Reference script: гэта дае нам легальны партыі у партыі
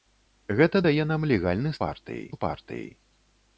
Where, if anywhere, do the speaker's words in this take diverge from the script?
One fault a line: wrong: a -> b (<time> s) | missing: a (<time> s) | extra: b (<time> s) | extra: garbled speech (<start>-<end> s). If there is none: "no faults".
no faults